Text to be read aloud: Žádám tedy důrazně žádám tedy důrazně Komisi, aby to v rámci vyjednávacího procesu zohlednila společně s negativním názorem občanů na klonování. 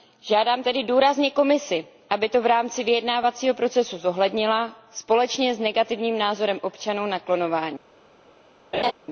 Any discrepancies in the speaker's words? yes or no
yes